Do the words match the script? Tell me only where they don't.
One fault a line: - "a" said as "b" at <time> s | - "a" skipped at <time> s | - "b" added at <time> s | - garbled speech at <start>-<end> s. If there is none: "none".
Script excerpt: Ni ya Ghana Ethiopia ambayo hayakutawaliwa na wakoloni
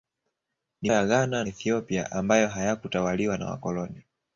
none